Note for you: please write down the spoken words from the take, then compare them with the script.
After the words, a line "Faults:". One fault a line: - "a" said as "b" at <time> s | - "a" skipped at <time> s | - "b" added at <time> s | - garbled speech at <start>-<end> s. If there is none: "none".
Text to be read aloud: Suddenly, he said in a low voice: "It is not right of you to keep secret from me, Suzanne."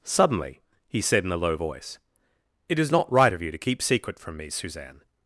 Suddenly, he said in a low voice: "It is not right of you to keep secret from me, Suzanne."
Faults:
none